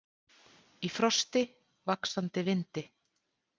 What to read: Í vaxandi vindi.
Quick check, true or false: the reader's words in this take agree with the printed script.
false